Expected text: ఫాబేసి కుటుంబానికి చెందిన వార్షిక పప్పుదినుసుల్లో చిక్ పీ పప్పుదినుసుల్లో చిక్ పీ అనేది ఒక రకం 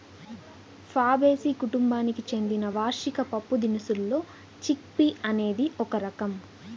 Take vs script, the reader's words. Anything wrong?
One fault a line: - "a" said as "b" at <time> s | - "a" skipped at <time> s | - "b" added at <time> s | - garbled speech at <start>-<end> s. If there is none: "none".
- "పప్పుదినుసుల్లో చిక్ పీ" skipped at 5.1 s